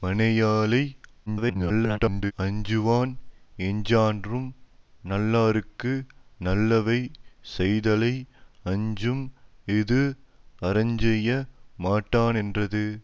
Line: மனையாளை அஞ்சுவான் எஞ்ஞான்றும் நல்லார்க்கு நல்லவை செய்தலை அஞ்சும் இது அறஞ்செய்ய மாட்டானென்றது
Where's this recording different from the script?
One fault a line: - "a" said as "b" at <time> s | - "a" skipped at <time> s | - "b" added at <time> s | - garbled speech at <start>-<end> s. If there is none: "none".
- garbled speech at 1.3-2.3 s